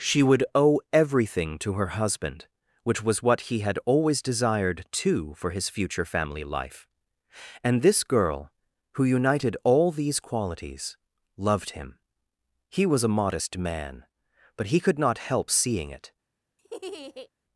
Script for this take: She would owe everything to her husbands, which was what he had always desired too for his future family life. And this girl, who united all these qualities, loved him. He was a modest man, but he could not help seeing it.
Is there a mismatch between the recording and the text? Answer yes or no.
yes